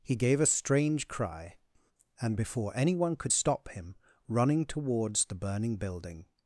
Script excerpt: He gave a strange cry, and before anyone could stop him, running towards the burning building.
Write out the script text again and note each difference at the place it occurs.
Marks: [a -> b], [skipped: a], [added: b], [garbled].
He gave a strange cry, and before anyone could stop him, running towards the burning building.